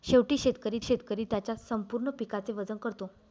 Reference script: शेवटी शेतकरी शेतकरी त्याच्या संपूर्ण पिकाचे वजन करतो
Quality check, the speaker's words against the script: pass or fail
pass